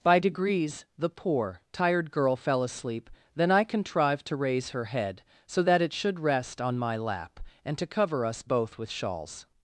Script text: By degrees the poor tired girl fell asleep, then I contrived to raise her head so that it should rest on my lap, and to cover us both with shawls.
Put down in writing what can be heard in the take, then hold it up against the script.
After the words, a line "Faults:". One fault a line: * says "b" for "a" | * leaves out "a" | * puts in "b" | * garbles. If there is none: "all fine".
By degrees the poor tired girl fell asleep, then I contrived to raise her head so that it should rest on my lap, and to cover us both with shawls.
Faults:
all fine